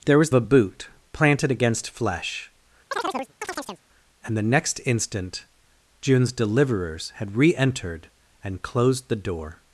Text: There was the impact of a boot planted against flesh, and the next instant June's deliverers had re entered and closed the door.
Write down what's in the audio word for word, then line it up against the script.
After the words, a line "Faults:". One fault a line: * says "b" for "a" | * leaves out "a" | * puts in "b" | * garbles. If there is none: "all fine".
There was a boot planted against flesh, and the next instant June's deliverers had re entered and closed the door.
Faults:
* leaves out "the impact of"